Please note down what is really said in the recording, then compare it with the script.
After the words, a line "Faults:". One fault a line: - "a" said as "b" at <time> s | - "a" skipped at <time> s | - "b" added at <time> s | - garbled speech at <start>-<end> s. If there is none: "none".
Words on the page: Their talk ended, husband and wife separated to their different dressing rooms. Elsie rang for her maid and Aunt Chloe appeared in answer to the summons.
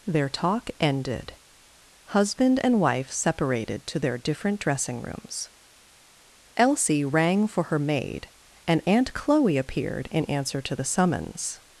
Their talk ended, husband and wife separated to their different dressing rooms. Elsie rang for her maid and Aunt Chloe appeared in answer to the summons.
Faults:
none